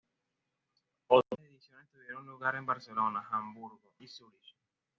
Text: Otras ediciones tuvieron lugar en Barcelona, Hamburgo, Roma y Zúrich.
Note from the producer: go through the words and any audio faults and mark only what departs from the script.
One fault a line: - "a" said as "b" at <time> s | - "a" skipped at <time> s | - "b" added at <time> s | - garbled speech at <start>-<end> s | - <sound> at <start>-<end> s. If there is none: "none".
- "Roma" skipped at 3.9 s